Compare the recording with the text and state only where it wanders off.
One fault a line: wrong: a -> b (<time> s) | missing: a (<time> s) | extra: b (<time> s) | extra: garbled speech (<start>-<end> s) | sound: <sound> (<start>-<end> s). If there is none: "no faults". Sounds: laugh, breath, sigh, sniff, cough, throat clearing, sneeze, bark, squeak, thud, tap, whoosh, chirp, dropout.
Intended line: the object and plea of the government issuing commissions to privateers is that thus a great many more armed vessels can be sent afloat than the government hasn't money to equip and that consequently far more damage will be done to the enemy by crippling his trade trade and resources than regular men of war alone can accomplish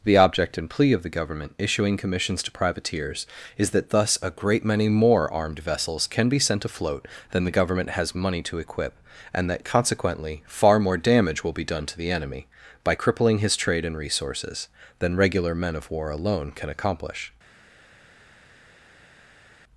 wrong: hasn't -> has (7.9 s)
missing: trade (13.8 s)